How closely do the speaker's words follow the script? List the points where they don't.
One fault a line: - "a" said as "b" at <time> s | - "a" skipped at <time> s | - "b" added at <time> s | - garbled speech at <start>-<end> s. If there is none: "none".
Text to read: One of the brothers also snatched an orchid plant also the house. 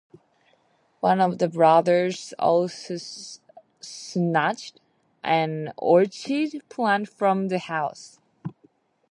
- "also" said as "from" at 7.1 s